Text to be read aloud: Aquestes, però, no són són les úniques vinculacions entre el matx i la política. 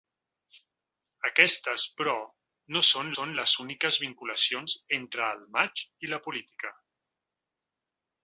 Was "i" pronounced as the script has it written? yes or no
yes